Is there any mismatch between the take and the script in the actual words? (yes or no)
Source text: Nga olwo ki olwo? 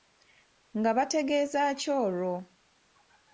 yes